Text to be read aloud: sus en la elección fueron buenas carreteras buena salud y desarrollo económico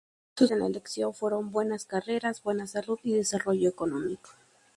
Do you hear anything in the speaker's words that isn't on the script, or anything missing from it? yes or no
no